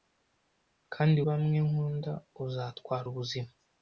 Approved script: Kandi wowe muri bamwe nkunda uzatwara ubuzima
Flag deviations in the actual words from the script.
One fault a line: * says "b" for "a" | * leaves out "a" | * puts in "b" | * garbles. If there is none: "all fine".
* leaves out "wowe muri"